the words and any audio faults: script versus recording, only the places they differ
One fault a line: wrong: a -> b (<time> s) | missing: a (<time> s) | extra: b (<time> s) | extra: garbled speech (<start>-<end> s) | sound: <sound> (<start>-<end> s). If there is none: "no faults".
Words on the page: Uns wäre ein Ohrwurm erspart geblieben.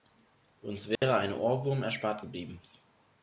sound: dropout (1.0-1.0 s)